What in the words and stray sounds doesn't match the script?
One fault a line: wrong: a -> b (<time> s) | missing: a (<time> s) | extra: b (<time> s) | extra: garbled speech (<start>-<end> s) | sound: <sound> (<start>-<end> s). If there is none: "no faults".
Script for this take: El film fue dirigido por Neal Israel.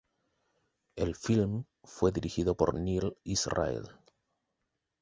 no faults